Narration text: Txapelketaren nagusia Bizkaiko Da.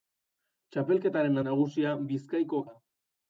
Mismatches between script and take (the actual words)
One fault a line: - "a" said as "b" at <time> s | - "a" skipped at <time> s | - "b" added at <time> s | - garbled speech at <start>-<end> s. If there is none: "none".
none